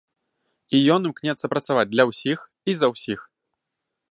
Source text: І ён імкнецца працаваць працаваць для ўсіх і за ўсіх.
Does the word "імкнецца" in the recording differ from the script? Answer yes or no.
no